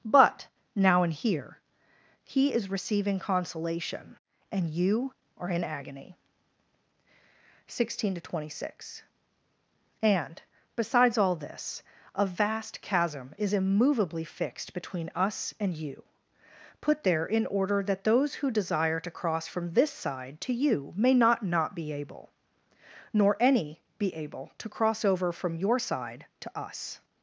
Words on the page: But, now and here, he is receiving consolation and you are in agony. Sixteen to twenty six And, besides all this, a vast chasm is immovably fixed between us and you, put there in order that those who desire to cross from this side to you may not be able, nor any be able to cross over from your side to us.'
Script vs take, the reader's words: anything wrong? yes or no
yes